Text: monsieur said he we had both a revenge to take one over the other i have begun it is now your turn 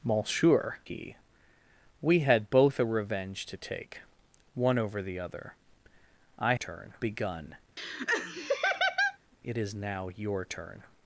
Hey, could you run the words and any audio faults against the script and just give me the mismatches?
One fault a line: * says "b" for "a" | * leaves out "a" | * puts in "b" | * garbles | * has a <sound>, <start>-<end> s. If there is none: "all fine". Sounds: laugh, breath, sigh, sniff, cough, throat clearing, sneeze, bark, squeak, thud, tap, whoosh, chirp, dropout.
* leaves out "said"
* says "turn" for "have"
* has a laugh, 7.8-9.2 s